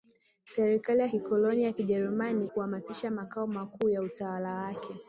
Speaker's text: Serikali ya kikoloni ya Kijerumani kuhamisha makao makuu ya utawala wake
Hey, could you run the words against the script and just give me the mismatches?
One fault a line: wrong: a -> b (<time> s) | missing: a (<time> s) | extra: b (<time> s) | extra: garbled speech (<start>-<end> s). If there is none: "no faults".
no faults